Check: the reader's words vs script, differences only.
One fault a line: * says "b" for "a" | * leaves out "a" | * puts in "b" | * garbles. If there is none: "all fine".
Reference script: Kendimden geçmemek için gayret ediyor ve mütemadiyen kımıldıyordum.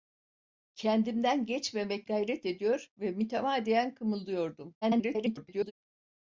* leaves out "için"
* garbles